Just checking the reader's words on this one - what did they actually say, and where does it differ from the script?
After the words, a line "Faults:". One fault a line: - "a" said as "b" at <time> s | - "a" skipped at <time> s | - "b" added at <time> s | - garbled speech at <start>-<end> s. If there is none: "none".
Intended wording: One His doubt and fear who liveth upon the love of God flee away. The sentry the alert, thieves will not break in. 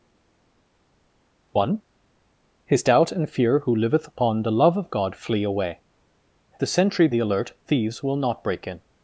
One His doubt and fear who liveth upon the love of God flee away. The sentry the alert, thieves will not break in.
Faults:
none